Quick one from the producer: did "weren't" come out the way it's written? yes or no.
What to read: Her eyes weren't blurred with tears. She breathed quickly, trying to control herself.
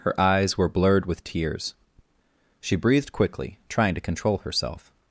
no